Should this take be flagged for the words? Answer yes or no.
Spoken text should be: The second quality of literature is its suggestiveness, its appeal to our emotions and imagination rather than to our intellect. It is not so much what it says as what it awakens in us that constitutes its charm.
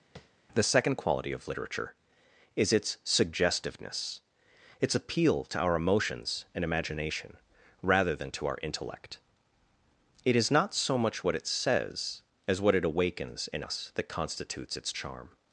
no